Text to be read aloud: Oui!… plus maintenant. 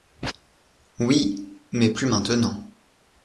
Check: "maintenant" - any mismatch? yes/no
no